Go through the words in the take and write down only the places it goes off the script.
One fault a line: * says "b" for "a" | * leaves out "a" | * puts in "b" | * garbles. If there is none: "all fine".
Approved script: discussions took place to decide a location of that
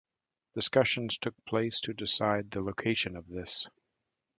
* says "the" for "a"
* says "this" for "that"